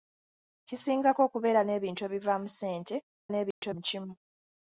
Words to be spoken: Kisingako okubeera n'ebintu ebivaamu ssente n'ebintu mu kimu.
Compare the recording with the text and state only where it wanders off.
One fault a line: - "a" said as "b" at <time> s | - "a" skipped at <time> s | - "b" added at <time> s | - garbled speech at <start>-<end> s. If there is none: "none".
none